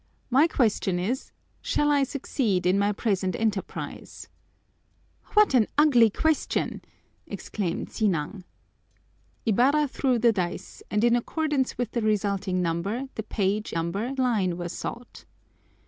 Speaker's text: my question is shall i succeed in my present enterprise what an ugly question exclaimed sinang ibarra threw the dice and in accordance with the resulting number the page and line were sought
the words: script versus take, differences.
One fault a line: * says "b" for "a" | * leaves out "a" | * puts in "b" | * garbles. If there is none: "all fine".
* says "number" for "and"